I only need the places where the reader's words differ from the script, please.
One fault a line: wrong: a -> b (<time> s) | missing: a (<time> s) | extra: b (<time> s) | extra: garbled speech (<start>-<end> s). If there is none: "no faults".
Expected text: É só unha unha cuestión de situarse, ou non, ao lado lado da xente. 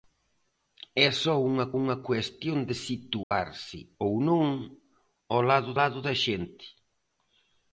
no faults